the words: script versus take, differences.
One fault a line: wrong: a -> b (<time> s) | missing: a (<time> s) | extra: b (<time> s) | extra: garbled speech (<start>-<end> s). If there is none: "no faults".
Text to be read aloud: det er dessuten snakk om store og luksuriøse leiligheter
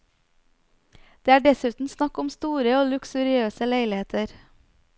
no faults